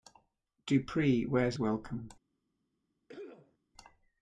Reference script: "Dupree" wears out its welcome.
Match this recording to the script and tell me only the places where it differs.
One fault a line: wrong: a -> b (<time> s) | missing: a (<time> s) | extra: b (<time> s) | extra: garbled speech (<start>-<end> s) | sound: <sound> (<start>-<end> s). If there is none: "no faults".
missing: out its (1.6 s)
sound: cough (3.1-3.6 s)